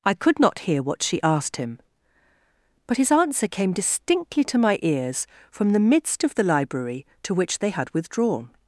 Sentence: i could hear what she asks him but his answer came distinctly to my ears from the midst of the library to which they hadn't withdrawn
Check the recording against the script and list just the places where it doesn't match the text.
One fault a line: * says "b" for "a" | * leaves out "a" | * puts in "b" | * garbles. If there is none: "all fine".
* puts in "not"
* says "asked" for "asks"
* says "had" for "hadn't"